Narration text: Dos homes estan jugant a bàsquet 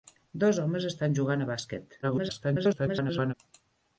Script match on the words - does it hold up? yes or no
no